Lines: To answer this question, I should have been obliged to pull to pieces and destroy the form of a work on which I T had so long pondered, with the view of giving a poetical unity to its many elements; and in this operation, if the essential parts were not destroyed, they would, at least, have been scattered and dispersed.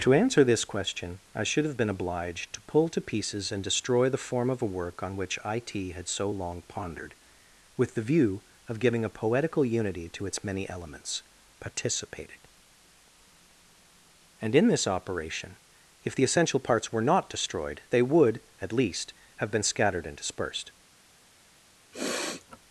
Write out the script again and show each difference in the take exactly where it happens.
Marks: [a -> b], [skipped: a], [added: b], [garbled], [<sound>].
To answer this question, I should have been obliged to pull to pieces and destroy the form of a work on which I T had so long pondered, with the view of giving a poetical unity to its many elements; [added: participated] and in this operation, if the essential parts were not destroyed, they would, at least, have been scattered and dispersed. [sniff]